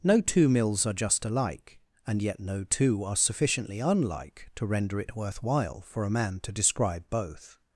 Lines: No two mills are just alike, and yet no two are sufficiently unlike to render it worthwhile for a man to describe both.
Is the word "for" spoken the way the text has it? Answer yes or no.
yes